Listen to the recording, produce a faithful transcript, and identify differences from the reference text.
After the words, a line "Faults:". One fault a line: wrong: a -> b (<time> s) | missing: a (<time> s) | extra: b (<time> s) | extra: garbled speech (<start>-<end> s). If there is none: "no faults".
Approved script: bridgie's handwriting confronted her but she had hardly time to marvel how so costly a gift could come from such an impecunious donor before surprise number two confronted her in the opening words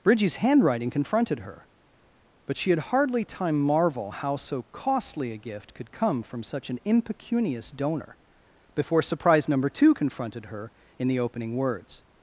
bridgie's handwriting confronted her but she had hardly time marvel how so costly a gift could come from such an impecunious donor before surprise number two confronted her in the opening words
Faults:
missing: to (3.6 s)